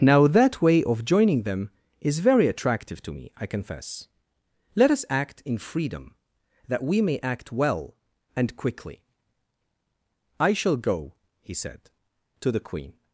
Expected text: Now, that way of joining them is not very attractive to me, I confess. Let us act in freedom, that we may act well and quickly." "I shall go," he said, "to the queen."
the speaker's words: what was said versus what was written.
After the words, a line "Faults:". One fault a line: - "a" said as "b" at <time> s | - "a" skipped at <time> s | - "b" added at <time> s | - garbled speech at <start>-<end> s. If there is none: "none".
Now, that way of joining them is very attractive to me, I confess. Let us act in freedom, that we may act well and quickly." "I shall go," he said, "to the queen."
Faults:
- "not" skipped at 2.2 s